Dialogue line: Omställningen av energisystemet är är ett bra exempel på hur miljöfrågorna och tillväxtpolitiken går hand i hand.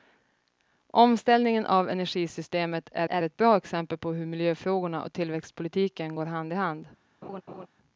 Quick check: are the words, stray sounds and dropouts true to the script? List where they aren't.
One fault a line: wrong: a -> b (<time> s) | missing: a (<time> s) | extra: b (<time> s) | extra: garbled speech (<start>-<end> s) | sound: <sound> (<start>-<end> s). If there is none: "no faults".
sound: laugh (7.2-7.7 s)